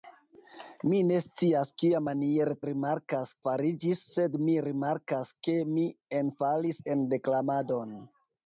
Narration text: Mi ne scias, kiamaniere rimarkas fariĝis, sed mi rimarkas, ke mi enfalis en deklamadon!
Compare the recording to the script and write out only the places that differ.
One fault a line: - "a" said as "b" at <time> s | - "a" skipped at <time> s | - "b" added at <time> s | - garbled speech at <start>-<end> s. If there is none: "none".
none